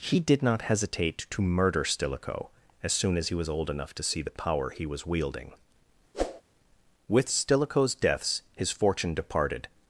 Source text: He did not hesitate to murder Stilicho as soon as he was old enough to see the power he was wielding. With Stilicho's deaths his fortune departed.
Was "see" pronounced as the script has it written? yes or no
yes